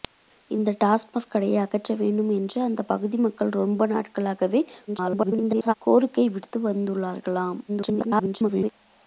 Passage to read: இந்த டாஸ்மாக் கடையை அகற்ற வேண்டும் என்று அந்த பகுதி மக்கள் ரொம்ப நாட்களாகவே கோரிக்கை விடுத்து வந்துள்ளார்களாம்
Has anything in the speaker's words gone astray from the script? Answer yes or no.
yes